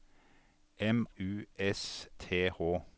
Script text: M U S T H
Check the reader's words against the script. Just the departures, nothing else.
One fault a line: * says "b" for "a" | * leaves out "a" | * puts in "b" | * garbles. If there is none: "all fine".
all fine